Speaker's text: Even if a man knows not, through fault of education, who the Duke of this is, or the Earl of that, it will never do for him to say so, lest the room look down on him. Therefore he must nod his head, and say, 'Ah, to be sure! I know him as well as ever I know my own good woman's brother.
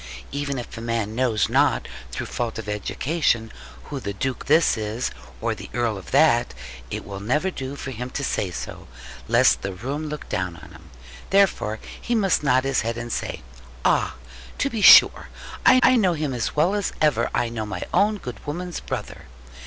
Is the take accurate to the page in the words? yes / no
no